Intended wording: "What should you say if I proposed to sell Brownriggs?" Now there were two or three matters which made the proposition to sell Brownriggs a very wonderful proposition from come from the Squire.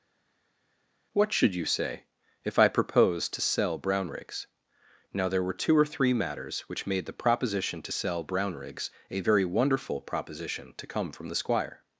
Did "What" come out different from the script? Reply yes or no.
no